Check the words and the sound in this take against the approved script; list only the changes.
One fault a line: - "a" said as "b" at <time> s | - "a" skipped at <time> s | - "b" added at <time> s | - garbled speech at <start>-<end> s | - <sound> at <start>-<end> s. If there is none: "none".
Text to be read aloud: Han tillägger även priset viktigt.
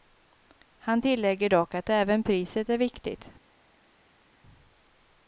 - "dock att" added at 1.5 s
- "är" added at 2.7 s